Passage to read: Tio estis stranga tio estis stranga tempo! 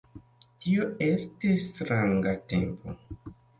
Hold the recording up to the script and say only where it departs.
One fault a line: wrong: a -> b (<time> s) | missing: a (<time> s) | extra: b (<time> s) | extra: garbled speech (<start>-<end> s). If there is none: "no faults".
missing: tio estis stranga (2.4 s)